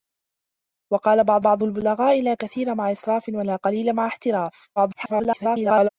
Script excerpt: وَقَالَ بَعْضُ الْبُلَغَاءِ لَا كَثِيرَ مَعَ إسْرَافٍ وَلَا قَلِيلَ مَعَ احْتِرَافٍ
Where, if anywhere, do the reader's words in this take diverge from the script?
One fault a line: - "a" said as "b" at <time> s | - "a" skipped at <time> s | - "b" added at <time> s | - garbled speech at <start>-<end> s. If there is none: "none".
- "بَعْضُ" added at 1.4 s
- garbled speech at 4.8-5.9 s